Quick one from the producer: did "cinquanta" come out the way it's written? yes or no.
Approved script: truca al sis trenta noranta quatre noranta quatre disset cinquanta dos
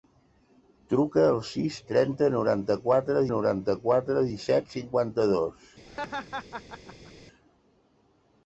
yes